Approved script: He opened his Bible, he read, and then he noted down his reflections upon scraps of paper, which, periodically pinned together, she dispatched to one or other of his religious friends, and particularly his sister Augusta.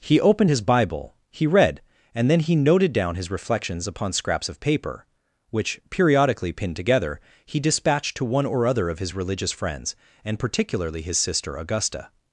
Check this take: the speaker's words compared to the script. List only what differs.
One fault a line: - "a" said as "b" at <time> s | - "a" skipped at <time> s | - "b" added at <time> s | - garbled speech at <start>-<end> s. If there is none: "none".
- "she" said as "he" at 7.4 s